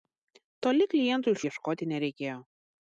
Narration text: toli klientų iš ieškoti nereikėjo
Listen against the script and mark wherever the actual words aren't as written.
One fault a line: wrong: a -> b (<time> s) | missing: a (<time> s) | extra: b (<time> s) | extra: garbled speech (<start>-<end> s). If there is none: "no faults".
no faults